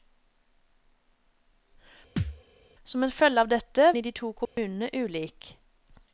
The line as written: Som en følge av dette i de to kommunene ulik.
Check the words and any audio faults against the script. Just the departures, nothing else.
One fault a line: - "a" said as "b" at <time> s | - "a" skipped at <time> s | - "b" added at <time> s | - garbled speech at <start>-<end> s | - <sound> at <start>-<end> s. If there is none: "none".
- thud at 2.2-2.4 s
- dropout at 4.5-4.6 s